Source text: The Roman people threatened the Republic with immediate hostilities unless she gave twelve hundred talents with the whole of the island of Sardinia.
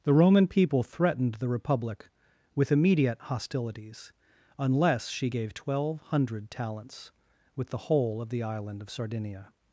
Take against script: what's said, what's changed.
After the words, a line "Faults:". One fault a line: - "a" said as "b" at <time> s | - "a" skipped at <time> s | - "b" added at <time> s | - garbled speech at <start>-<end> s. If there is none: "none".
The Roman people threatened the Republic with immediate hostilities unless she gave twelve hundred talents with the whole of the island of Sardinia.
Faults:
none